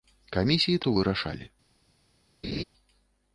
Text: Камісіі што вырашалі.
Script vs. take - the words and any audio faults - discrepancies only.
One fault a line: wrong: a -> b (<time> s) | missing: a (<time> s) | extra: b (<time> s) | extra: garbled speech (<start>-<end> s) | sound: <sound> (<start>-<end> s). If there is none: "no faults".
sound: laugh (2.4-2.6 s)